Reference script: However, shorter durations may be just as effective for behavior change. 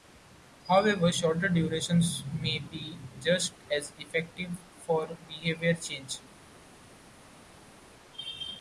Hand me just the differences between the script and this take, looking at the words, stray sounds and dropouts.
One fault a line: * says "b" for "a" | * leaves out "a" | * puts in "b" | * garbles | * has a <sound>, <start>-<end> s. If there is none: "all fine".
all fine